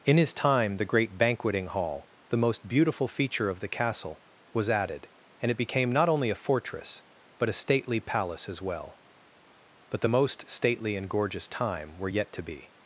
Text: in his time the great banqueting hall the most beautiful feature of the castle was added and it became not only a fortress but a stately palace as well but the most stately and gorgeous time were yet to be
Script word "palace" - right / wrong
right